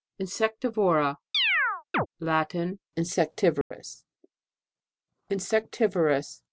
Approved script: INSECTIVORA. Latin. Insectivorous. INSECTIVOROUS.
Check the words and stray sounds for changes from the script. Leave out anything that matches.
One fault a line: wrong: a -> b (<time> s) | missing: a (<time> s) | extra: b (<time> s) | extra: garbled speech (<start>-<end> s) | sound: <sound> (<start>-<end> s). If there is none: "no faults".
sound: chirp (1.3-2.1 s)
sound: dropout (3.6-3.7 s)